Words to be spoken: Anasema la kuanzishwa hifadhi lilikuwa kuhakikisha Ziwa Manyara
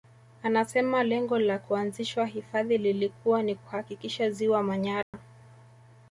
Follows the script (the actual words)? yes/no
no